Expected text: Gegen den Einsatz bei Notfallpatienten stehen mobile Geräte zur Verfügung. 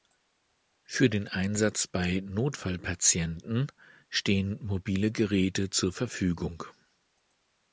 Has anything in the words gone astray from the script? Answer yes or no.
yes